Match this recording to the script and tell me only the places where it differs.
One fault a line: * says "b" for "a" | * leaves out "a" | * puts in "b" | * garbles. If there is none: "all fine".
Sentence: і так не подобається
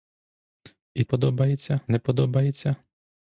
* says "подобається" for "так"